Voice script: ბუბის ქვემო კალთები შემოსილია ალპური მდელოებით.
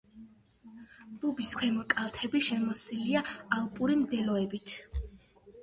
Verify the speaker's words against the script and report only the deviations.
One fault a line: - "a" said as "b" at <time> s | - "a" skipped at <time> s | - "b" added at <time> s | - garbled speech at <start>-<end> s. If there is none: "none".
none